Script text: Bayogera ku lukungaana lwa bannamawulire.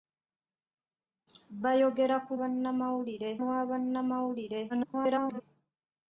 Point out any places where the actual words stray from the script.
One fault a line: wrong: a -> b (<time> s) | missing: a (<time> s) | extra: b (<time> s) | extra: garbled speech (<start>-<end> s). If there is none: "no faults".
wrong: lukungaana -> bannamawulire (2.4 s)
extra: garbled speech (4.7-5.4 s)